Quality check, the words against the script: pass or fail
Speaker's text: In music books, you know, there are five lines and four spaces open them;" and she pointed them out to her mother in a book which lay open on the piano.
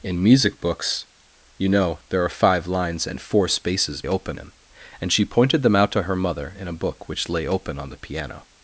pass